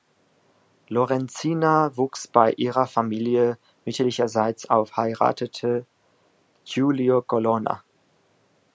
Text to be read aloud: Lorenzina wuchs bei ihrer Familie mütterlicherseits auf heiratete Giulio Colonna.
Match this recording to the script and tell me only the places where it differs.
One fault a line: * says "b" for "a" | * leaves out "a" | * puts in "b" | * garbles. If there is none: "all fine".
all fine